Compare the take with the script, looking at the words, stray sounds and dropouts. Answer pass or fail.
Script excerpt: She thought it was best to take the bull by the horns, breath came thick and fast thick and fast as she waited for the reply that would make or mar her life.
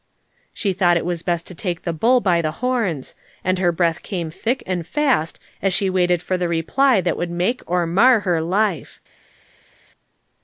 fail